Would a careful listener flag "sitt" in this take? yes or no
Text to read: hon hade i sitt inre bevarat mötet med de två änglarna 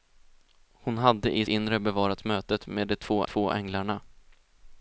yes